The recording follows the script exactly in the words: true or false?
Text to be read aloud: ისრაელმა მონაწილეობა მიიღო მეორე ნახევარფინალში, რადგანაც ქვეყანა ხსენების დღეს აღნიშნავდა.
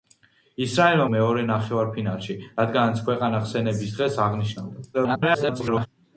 false